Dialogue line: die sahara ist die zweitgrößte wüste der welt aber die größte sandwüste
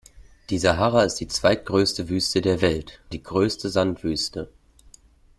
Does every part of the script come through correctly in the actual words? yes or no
no